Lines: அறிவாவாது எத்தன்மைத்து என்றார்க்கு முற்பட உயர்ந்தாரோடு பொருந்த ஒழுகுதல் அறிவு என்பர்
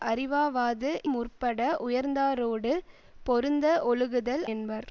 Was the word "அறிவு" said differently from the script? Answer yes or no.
yes